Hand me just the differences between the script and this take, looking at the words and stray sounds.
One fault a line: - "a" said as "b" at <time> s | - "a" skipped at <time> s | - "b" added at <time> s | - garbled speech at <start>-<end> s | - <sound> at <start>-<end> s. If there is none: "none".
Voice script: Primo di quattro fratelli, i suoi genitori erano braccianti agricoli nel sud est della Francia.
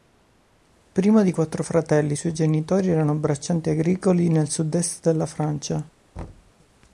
- thud at 6.2-6.5 s